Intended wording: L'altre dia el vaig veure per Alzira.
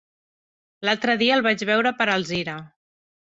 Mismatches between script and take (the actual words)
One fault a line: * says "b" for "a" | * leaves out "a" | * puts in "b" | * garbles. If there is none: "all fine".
all fine